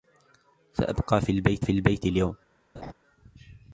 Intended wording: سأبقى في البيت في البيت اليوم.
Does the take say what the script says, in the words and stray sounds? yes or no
no